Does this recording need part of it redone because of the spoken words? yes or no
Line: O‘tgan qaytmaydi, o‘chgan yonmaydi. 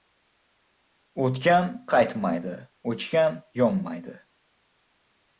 no